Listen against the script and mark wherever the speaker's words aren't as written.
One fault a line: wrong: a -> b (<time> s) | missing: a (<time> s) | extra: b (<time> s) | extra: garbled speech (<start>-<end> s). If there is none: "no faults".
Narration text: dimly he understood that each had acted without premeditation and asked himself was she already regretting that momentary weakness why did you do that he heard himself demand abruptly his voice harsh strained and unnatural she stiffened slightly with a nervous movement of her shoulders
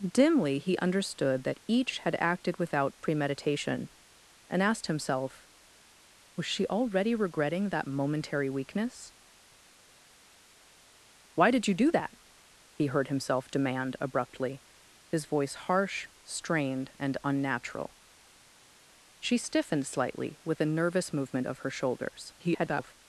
extra: garbled speech (22.4-22.9 s)